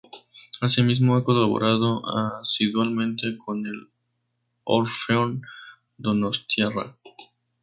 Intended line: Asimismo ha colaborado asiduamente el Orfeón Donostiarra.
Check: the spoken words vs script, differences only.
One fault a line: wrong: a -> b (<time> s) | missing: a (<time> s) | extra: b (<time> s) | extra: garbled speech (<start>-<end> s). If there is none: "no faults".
extra: con (3.4 s)